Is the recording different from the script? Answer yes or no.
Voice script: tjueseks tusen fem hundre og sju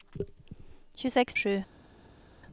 yes